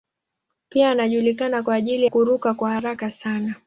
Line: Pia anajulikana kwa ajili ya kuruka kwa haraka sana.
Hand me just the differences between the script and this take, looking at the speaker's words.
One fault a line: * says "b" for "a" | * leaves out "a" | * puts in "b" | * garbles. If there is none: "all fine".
* leaves out "ya"